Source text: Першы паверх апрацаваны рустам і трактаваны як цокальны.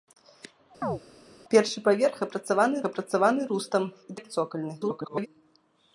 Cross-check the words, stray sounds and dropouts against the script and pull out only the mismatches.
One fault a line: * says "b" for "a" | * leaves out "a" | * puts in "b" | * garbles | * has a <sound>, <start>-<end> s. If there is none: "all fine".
* has a chirp, 0.8-1.0 s
* puts in "апрацаваны"
* leaves out "трактаваны"
* garbles